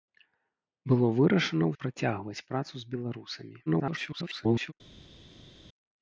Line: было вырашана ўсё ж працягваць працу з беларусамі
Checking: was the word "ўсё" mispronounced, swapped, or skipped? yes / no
yes